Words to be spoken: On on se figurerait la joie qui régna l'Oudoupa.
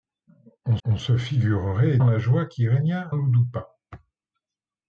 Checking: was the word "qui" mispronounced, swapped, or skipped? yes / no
no